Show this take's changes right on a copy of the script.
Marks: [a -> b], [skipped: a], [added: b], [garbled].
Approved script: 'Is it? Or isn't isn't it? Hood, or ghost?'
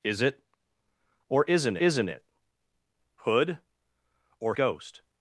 'Is it? Or isn't isn't it? Hood, or ghost?'